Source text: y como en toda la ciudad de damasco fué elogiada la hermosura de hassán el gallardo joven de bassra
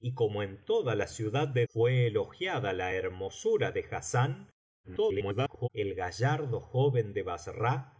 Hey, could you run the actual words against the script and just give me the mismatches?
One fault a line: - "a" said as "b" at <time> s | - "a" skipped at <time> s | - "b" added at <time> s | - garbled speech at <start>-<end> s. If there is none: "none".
- "damasco" skipped at 1.7 s
- garbled speech at 4.8-5.7 s